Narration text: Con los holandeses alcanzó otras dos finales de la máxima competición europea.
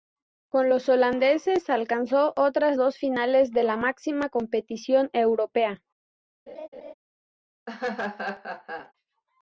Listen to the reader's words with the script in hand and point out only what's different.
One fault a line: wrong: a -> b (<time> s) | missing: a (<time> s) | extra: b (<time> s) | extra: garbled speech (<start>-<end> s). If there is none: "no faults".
no faults